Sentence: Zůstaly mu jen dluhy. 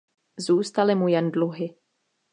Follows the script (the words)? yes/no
yes